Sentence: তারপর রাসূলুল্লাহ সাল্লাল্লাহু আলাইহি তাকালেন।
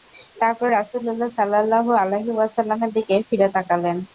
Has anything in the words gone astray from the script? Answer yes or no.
yes